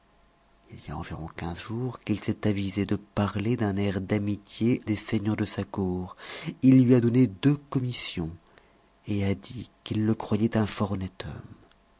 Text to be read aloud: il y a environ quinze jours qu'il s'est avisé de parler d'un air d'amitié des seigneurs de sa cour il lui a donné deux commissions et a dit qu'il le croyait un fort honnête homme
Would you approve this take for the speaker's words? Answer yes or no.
yes